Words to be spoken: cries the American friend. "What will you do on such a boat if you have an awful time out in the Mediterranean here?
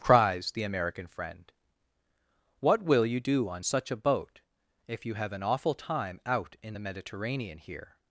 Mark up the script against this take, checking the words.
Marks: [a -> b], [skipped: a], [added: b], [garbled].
cries the American friend. "What will you do on such a boat if you have an awful time out in the Mediterranean here?